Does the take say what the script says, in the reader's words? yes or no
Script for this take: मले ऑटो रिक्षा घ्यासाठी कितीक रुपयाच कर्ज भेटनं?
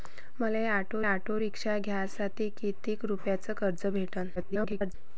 no